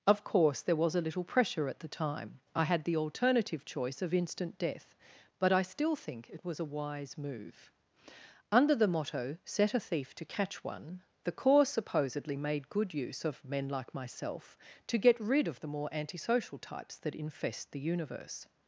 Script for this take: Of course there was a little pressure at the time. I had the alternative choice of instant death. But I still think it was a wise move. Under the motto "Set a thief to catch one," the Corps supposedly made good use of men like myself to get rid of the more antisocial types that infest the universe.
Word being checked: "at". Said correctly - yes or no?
yes